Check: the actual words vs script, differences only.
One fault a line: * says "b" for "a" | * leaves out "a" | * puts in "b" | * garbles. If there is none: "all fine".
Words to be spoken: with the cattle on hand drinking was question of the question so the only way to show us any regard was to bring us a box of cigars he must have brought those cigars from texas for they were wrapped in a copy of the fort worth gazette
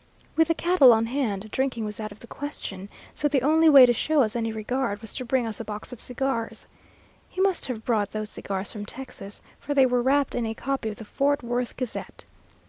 * says "out" for "question"